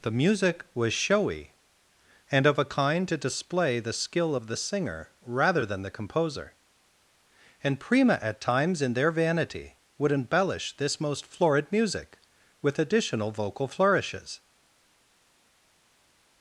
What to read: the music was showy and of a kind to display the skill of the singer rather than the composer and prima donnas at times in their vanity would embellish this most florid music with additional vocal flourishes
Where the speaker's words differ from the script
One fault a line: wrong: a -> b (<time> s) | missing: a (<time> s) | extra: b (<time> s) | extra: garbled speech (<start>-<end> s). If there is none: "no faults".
missing: donnas (8.2 s)